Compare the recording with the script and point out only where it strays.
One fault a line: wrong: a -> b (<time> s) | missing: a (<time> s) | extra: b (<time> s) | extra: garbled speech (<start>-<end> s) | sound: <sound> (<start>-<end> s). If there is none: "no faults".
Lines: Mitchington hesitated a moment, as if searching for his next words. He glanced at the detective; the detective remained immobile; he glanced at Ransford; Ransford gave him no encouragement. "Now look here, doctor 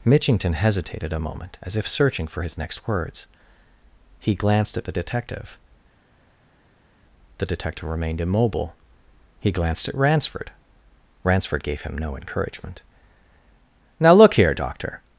no faults